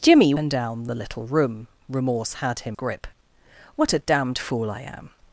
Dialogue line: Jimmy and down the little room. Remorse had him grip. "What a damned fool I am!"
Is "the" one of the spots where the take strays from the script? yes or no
no